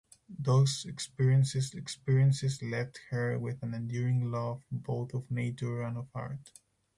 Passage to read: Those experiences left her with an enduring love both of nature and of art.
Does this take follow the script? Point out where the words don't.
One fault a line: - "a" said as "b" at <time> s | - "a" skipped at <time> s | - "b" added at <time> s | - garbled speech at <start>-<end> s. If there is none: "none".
- "experiences" added at 1.7 s